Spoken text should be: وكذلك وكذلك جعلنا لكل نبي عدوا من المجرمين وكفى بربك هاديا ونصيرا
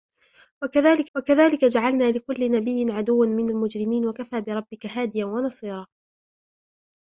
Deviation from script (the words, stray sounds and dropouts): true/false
false